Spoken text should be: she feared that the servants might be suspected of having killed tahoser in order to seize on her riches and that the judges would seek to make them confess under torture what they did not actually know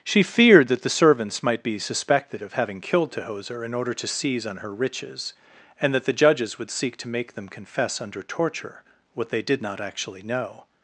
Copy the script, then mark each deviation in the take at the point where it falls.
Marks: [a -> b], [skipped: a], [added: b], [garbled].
she feared that the servants might be suspected of having killed tahoser in order to seize on her riches and that the judges would seek to make them confess under torture what they did not actually know